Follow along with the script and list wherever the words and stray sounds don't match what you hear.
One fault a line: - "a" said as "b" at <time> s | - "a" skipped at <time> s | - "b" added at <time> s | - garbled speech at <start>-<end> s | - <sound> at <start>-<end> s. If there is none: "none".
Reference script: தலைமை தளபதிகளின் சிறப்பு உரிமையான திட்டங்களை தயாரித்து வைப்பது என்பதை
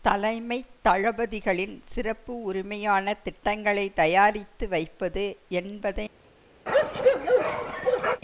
- bark at 6.7-8.2 s